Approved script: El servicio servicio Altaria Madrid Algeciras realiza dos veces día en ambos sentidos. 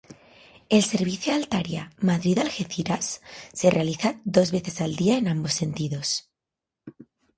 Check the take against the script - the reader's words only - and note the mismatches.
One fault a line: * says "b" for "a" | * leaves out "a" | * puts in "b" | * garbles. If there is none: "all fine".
* leaves out "servicio"
* puts in "se"
* puts in "al"